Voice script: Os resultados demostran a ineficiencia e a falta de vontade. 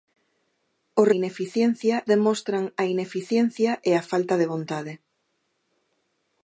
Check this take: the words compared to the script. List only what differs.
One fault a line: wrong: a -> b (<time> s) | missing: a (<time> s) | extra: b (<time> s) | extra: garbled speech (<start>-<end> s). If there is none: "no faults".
wrong: resultados -> ineficiencia (1.2 s)